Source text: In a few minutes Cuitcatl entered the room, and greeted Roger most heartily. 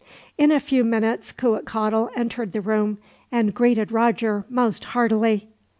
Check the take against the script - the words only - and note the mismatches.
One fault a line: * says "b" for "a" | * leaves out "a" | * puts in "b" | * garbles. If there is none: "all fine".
all fine